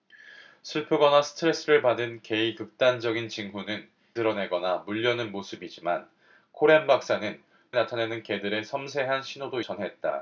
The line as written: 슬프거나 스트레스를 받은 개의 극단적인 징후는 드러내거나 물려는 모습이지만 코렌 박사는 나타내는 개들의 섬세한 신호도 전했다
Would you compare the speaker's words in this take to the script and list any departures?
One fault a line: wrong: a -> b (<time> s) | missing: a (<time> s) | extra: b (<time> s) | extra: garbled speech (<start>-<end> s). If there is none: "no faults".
no faults